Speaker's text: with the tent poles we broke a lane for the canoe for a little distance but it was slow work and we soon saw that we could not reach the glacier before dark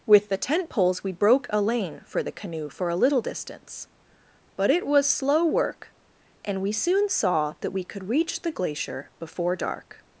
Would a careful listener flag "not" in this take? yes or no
yes